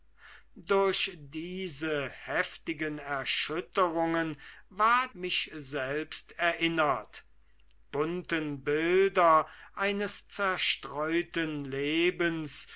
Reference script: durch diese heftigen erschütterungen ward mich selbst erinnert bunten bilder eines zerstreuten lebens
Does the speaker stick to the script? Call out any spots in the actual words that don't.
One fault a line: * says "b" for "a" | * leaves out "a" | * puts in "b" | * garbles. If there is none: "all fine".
all fine